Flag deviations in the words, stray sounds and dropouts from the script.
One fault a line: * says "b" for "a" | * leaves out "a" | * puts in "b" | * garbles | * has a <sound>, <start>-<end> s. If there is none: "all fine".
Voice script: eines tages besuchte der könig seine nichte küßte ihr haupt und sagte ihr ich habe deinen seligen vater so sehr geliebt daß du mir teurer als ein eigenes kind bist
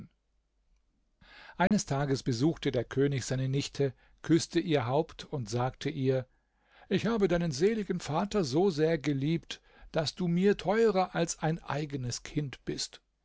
* has a dropout, 1.7-1.7 s